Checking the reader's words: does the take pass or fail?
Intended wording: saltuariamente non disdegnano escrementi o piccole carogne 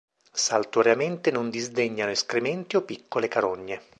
pass